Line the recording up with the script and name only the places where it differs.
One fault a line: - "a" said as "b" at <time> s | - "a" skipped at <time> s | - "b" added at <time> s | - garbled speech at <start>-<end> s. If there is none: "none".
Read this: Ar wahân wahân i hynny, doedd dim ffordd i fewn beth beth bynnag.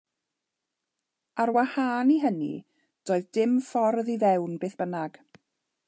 - "wahân" skipped at 2.1 s
- "beth" skipped at 4.8 s